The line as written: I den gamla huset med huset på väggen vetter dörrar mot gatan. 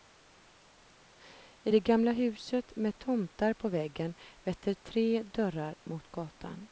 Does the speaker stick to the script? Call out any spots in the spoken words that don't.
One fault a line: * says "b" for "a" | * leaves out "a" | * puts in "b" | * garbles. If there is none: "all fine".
* says "det" for "den"
* says "tomtar" for "huset"
* puts in "tre"